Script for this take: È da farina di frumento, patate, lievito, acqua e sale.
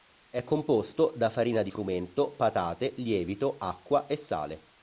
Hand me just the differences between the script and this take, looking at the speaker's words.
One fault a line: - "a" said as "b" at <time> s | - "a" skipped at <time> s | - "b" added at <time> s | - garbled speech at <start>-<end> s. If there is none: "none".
- "composto" added at 0.4 s